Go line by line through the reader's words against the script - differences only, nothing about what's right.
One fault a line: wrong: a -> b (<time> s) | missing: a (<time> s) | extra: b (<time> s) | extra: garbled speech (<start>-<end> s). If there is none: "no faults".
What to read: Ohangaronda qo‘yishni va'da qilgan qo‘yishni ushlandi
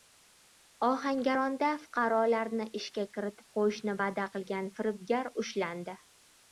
extra: fuqarolarni ishga kiritib (1.8 s)
wrong: qo‘yishni -> firibgar (4.8 s)